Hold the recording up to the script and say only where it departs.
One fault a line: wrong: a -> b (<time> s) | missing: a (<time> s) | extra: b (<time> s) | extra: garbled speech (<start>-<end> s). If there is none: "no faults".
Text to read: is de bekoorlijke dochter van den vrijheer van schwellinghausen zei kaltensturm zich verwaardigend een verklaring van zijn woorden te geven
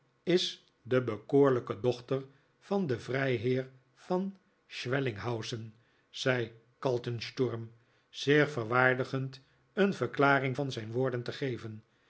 no faults